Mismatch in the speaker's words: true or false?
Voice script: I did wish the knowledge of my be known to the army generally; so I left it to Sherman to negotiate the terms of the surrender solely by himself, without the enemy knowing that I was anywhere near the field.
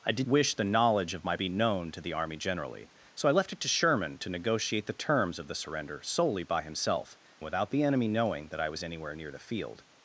false